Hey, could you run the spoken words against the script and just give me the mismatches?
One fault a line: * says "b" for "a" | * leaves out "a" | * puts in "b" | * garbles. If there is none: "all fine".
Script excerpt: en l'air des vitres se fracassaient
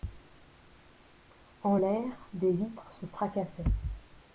all fine